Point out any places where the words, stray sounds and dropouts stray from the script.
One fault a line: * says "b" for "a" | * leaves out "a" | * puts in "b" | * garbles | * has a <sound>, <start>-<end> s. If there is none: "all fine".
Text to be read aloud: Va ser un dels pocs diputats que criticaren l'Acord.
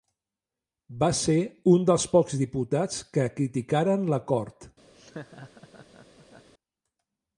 * has a laugh, 4.9-6.5 s